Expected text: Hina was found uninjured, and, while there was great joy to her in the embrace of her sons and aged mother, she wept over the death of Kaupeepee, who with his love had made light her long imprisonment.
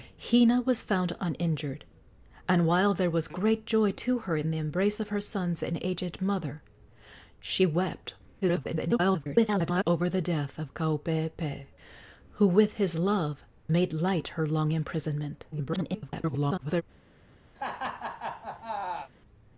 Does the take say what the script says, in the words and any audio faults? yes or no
no